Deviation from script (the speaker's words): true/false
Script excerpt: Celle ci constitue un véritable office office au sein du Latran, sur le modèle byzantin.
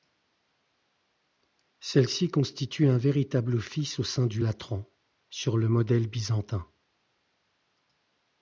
true